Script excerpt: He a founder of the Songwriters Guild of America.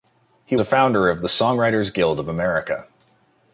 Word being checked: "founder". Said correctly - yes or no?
yes